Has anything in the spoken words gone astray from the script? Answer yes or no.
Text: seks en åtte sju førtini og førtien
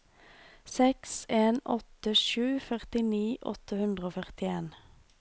yes